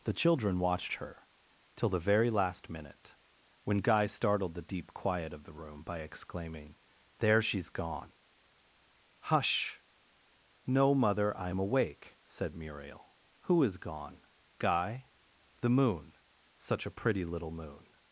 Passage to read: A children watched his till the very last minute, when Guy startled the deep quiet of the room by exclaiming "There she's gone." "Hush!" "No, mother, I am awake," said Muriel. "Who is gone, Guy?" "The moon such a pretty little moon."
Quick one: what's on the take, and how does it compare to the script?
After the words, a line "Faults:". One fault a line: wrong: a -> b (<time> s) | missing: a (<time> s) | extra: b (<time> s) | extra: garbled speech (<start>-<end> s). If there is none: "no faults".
The children watched her till the very last minute, when Guy startled the deep quiet of the room by exclaiming "There she's gone." "Hush!" "No, mother, I am awake," said Muriel. "Who is gone, Guy?" "The moon such a pretty little moon."
Faults:
wrong: A -> The (0.0 s)
wrong: his -> her (0.9 s)